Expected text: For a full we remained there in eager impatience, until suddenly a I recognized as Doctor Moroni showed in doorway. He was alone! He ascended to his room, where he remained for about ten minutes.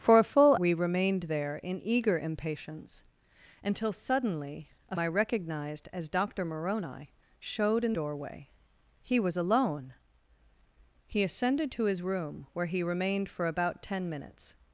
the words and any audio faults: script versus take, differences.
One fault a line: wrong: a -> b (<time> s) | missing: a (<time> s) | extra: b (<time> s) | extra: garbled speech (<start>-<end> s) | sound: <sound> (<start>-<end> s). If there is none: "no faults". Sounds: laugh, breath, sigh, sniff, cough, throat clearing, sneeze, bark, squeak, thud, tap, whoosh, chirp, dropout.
no faults